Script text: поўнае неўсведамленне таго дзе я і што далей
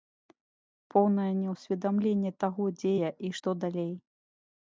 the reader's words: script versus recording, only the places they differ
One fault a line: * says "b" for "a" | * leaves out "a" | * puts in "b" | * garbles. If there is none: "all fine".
all fine